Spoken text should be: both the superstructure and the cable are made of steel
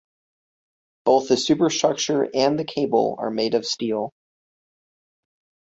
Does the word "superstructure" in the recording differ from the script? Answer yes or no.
no